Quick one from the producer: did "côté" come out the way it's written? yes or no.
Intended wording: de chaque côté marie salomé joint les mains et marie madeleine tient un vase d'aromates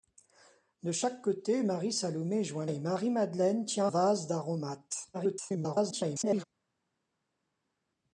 yes